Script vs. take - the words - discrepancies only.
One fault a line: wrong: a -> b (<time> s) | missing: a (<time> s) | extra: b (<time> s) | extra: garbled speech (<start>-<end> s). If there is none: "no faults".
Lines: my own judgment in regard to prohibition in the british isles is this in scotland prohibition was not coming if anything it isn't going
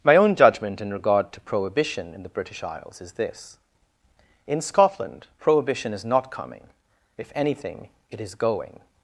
wrong: was -> is (5.9 s)
wrong: isn't -> is (8.2 s)